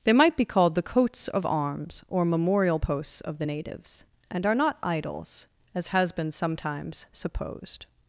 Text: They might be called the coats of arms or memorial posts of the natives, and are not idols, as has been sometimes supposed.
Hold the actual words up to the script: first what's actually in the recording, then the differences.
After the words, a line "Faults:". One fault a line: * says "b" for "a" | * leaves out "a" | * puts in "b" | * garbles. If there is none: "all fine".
They might be called the coats of arms or memorial posts of the natives, and are not idols, as has been sometimes supposed.
Faults:
all fine